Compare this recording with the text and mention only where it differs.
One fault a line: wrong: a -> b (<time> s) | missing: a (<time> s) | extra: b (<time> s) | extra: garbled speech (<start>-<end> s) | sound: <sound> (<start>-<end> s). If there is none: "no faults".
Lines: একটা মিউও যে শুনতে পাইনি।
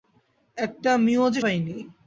missing: শুনতে (1.4 s)